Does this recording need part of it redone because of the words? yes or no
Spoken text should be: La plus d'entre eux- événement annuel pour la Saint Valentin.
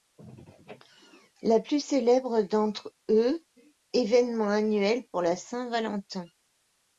yes